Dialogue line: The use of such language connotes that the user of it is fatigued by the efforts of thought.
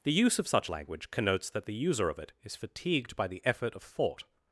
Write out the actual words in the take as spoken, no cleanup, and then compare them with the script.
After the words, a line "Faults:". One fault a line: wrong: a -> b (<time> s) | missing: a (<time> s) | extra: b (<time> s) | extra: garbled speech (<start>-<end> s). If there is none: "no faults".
The use of such language connotes that the user of it is fatigued by the effort of thought.
Faults:
wrong: efforts -> effort (3.4 s)